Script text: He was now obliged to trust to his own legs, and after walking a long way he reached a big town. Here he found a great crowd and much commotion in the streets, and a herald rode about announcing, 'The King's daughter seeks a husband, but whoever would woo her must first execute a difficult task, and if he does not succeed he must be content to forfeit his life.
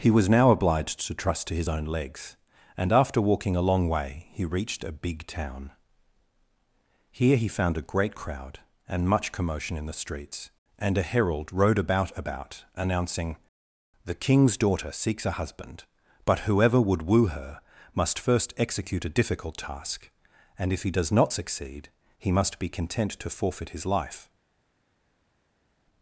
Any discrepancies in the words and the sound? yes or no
yes